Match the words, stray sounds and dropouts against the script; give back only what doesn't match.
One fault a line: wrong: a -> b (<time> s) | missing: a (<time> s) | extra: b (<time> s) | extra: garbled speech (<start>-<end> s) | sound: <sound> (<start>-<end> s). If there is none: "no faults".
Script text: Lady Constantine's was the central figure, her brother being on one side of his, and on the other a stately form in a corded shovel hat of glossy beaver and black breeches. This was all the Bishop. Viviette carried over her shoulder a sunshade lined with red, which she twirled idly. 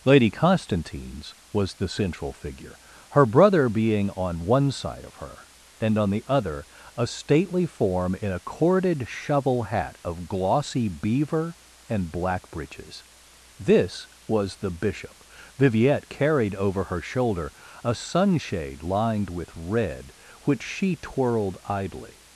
wrong: his -> her (5.2 s)
missing: all (14.6 s)